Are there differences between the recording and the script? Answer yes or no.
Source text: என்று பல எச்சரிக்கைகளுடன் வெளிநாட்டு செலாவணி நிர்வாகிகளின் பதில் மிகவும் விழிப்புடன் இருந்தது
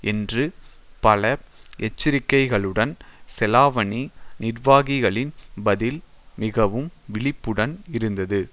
yes